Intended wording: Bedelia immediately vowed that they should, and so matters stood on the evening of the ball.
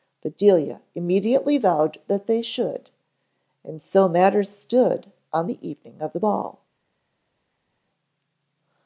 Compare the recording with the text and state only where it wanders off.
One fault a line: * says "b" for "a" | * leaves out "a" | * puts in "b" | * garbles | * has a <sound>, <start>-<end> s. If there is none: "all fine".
all fine